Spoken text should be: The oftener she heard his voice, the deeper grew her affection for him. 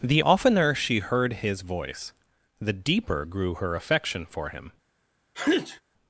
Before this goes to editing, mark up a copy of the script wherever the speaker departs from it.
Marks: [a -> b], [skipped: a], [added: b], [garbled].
The oftener she heard his voice, the deeper grew her affection for him.